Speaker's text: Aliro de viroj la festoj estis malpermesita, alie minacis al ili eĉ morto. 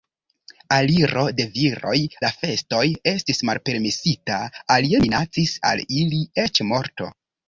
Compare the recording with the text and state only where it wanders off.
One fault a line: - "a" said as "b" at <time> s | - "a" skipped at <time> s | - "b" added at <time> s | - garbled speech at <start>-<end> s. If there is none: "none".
none